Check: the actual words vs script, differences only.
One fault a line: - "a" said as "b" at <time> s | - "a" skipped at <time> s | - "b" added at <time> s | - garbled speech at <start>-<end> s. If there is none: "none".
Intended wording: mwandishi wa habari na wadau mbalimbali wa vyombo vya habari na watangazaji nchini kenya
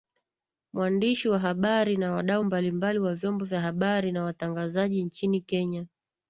none